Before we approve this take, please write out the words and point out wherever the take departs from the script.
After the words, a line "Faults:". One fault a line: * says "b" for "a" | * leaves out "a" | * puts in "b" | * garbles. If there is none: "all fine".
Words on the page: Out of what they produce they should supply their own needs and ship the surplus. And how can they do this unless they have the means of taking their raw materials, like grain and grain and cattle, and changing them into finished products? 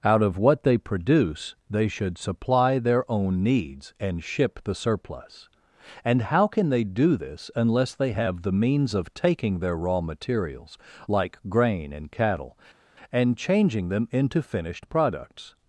Out of what they produce they should supply their own needs and ship the surplus. And how can they do this unless they have the means of taking their raw materials, like grain and cattle, and changing them into finished products?
Faults:
* leaves out "grain and"